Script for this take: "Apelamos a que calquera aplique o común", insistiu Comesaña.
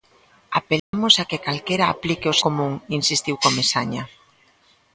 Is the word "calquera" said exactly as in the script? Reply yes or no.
yes